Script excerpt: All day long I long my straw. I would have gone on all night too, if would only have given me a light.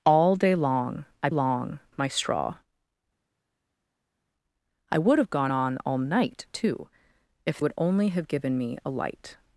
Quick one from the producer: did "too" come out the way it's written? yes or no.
yes